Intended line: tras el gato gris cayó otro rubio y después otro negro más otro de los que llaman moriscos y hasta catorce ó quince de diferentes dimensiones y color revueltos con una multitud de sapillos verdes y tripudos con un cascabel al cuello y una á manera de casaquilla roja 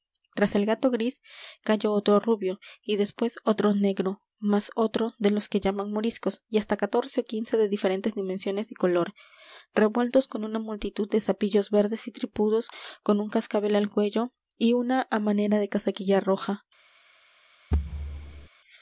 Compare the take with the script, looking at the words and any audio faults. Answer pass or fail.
fail